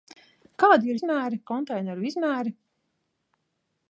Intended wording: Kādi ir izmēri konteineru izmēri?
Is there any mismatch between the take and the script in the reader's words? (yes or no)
no